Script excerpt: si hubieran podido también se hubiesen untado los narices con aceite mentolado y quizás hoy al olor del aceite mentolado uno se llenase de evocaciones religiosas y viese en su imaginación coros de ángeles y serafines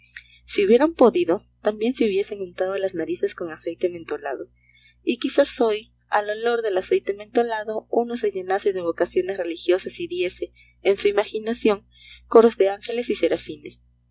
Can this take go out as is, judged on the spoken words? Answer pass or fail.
fail